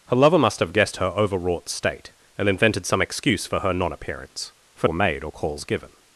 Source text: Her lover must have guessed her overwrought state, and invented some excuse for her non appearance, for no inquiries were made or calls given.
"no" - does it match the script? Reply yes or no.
no